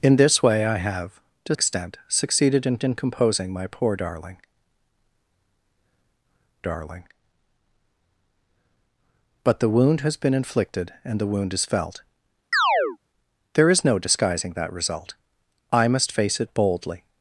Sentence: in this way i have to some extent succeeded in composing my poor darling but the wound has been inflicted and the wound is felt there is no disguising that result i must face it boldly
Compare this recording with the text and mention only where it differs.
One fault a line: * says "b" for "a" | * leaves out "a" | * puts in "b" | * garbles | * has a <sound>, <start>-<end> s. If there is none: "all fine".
* leaves out "some"
* puts in "in"
* puts in "darling"
* has a chirp, 12.5-13.0 s